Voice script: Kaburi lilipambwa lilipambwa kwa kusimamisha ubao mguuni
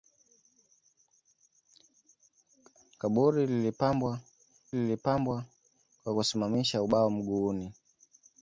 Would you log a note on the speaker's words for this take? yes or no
no